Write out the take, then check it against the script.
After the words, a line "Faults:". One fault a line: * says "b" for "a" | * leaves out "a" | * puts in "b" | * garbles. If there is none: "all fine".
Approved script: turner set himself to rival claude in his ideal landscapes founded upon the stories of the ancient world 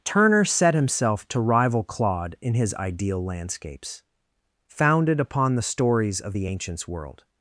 turner set himself to rival claude in his ideal landscapes founded upon the stories of the ancients world
Faults:
* says "ancients" for "ancient"